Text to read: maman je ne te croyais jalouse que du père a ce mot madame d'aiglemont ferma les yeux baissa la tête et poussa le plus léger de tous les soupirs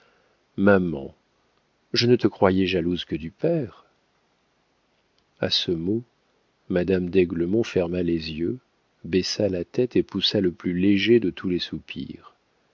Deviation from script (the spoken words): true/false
false